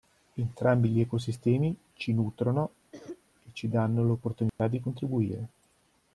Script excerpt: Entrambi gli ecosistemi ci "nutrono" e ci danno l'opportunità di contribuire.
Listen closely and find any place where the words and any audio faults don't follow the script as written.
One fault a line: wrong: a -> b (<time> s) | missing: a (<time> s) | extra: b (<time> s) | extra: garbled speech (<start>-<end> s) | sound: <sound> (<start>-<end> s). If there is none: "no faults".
sound: cough (2.9-3.2 s)
sound: dropout (4.5-4.6 s)